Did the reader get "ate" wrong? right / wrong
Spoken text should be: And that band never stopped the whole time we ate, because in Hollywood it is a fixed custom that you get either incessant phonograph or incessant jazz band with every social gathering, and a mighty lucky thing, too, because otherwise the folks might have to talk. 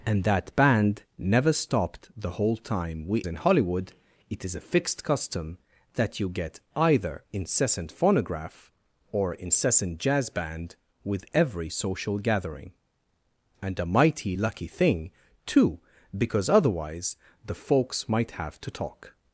wrong